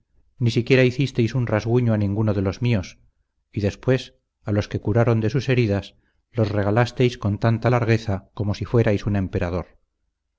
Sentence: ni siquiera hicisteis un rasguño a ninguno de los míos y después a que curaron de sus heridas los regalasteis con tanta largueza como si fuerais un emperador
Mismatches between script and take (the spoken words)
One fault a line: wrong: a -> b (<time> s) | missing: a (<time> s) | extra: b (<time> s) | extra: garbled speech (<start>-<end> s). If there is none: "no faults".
extra: los (4.5 s)